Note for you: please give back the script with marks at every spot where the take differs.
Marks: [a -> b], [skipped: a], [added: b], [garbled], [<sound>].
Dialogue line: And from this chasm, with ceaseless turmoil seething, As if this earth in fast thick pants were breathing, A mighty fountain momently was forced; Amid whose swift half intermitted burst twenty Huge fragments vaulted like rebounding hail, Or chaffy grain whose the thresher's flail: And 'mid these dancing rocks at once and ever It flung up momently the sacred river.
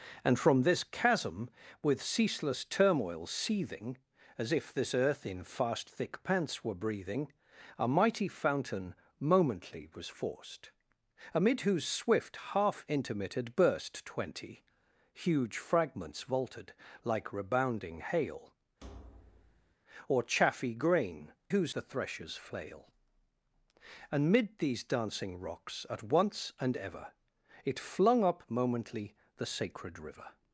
And from this chasm, with ceaseless turmoil seething, As if this earth in fast thick pants were breathing, A mighty fountain momently was forced; Amid whose swift half intermitted burst twenty Huge fragments vaulted like rebounding hail, [thud] Or chaffy grain whose the thresher's flail: And 'mid these dancing rocks at once and ever It flung up momently the sacred river.